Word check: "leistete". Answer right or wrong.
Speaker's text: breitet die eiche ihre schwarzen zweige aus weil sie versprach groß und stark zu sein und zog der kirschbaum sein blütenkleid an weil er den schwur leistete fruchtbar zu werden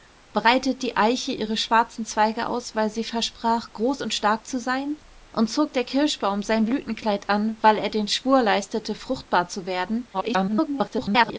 right